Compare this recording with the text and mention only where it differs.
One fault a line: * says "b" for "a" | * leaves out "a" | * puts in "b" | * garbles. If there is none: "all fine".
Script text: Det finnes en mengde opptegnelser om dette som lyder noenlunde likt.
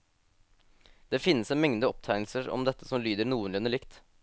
all fine